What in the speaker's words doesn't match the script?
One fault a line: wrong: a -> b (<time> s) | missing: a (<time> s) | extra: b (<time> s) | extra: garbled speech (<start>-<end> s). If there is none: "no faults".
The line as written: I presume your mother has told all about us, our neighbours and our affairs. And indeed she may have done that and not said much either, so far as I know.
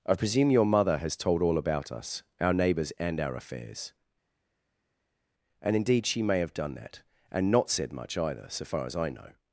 no faults